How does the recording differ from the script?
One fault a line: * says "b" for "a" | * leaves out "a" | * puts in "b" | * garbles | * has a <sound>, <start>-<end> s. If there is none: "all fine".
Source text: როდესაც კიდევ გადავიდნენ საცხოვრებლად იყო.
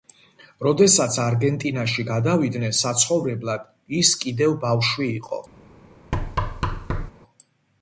* says "არგენტინაში" for "კიდევ"
* puts in "ის კიდევ ბავშვი"
* has a thud, 6.1-7.1 s